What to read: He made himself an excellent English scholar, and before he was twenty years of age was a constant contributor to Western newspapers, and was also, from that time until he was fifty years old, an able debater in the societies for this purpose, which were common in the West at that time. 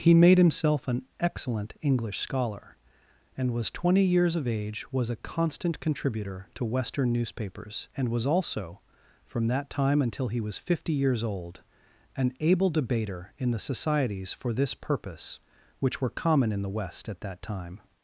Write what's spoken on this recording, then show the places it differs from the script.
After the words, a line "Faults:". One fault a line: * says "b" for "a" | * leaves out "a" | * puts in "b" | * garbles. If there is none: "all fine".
He made himself an excellent English scholar, and was twenty years of age was a constant contributor to Western newspapers, and was also, from that time until he was fifty years old, an able debater in the societies for this purpose, which were common in the West at that time.
Faults:
* leaves out "before he"